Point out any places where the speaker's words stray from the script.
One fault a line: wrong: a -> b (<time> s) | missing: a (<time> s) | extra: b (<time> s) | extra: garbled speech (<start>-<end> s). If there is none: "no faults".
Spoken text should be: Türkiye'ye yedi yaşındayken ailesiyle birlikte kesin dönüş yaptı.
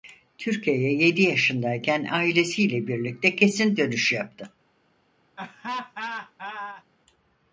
no faults